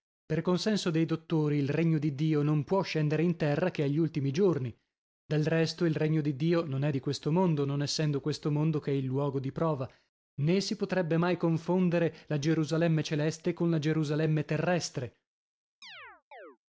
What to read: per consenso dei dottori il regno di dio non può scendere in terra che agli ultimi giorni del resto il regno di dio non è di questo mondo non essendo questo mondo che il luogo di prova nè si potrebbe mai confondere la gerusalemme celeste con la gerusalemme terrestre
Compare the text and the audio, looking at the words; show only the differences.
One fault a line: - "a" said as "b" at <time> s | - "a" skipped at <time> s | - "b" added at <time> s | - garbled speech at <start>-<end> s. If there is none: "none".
none